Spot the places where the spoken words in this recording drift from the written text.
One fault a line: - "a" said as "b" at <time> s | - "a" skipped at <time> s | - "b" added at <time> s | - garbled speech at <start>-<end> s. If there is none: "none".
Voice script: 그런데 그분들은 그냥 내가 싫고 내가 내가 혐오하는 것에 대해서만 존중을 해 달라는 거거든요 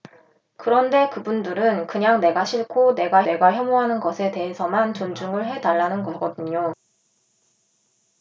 none